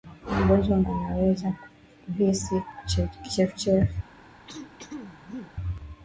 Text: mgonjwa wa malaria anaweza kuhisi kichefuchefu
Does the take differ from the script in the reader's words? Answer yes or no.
yes